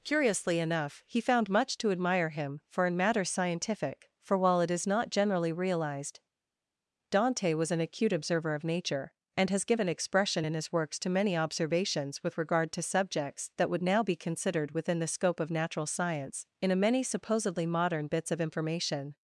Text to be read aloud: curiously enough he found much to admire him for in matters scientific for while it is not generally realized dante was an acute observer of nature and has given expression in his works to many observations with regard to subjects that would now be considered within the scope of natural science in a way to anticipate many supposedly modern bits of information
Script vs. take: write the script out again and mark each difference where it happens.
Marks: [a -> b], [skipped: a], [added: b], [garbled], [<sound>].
curiously enough he found much to admire him for in matters scientific for while it is not generally realized dante was an acute observer of nature and has given expression in his works to many observations with regard to subjects that would now be considered within the scope of natural science in a [skipped: way to anticipate] many supposedly modern bits of information